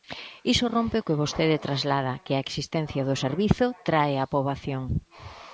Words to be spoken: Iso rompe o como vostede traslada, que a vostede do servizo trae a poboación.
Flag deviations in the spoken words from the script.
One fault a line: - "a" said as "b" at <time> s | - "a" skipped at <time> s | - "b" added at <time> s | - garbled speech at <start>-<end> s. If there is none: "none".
- "como" said as "que" at 1.1 s
- "vostede" said as "existencia" at 2.5 s